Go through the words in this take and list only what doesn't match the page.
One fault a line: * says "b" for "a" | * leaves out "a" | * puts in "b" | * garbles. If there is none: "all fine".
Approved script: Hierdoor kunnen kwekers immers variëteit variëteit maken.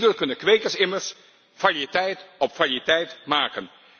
* puts in "op"